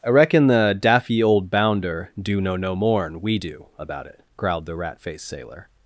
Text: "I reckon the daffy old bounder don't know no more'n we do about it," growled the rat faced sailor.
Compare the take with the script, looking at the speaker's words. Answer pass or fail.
fail